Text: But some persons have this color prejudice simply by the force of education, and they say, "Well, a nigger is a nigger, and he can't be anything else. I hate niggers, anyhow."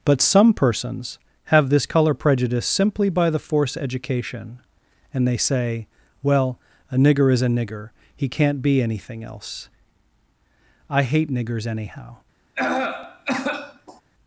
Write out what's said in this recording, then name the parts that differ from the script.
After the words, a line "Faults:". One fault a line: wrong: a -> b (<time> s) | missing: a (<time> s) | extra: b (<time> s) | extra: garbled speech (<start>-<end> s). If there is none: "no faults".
But some persons have this color prejudice simply by the force education, and they say, "Well, a nigger is a nigger, he can't be anything else. I hate niggers, anyhow."
Faults:
missing: of (3.8 s)
missing: and (7.9 s)